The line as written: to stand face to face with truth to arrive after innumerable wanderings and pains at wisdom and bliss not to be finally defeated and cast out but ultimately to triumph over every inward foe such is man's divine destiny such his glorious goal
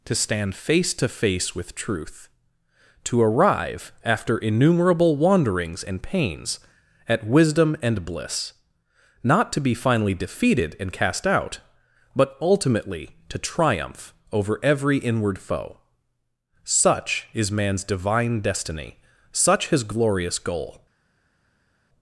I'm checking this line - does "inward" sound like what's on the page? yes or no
yes